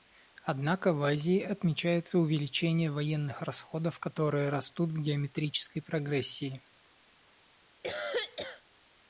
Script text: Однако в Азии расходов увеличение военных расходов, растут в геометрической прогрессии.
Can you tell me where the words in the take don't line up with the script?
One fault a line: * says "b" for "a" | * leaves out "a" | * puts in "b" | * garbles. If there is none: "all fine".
* says "отмечается" for "расходов"
* puts in "которые"